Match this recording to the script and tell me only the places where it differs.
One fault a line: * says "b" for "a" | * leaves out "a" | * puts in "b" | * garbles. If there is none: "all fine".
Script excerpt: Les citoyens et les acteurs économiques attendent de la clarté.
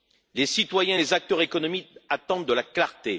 all fine